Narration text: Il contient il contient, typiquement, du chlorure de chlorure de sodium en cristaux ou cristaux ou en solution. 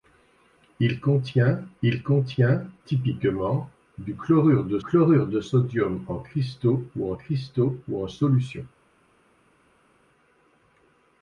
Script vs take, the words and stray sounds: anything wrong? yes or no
no